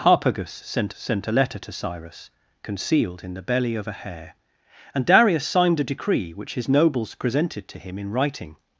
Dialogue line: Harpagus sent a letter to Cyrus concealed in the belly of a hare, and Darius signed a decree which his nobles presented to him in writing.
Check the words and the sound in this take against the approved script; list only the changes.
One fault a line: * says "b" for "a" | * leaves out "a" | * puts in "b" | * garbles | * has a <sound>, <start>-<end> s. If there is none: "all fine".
* puts in "sent"